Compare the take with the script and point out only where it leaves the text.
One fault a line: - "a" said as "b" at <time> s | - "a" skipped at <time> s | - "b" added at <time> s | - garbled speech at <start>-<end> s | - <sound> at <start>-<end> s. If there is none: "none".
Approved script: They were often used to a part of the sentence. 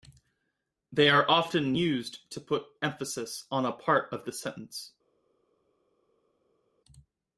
- "were" said as "are" at 1.1 s
- "put emphasis on" added at 2.4 s